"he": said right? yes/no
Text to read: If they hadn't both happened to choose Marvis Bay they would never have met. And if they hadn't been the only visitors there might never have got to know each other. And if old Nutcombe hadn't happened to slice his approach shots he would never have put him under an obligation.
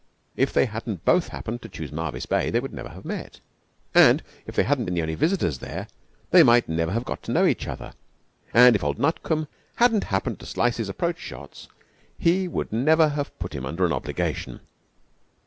yes